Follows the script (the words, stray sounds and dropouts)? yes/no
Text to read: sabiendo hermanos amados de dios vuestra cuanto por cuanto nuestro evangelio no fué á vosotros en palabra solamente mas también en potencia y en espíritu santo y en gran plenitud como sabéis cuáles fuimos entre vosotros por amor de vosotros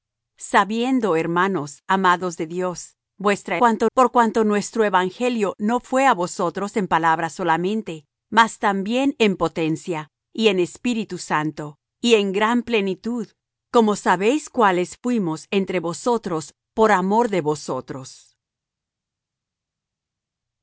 yes